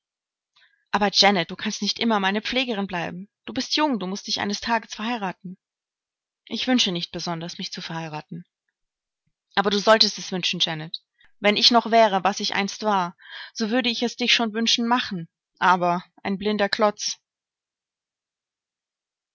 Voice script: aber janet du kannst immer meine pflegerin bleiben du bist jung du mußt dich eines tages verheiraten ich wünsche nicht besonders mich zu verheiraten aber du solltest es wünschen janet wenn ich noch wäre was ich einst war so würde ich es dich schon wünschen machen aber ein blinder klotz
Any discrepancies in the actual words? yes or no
yes